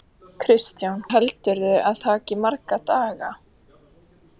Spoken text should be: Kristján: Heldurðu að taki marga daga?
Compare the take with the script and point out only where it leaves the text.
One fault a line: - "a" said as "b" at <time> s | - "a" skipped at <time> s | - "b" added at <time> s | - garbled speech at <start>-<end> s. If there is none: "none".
none